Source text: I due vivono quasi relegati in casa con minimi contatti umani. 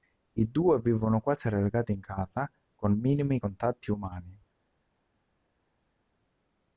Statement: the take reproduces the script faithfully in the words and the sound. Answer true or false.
true